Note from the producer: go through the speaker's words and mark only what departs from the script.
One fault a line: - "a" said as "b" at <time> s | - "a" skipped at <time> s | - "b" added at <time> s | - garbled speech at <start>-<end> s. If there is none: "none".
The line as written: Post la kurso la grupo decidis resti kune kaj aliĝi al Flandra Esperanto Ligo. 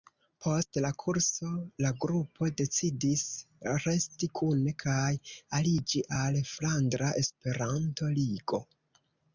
none